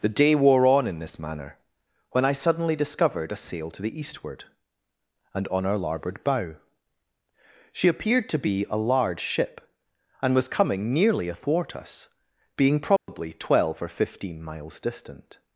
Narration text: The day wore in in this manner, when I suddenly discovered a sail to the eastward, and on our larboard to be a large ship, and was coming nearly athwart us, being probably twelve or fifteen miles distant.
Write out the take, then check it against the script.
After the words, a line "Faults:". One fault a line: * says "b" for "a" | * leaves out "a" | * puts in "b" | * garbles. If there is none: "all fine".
The day wore on in this manner, when I suddenly discovered a sail to the eastward, and on our larboard bow. She appeared to be a large ship, and was coming nearly athwart us, being probably twelve or fifteen miles distant.
Faults:
* says "on" for "in"
* puts in "bow She appeared"